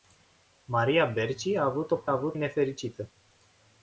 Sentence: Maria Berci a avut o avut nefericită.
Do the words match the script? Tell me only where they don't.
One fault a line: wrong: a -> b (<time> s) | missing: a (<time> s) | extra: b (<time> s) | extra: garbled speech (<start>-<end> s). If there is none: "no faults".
no faults